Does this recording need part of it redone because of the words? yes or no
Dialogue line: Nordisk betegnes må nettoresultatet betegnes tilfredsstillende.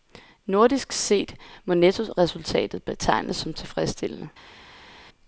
yes